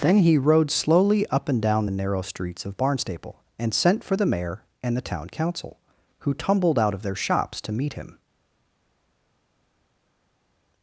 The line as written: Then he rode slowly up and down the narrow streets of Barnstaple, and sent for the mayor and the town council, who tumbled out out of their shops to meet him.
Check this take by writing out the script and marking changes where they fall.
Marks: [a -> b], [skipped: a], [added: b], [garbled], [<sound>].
Then he rode slowly up and down the narrow streets of Barnstaple, and sent for the mayor and the town council, who tumbled out [skipped: out] of their shops to meet him.